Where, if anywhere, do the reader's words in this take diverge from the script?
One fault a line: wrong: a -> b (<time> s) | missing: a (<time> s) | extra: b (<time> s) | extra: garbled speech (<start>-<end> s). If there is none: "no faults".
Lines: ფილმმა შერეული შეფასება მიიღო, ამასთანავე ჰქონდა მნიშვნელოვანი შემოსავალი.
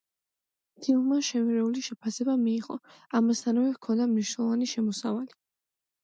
no faults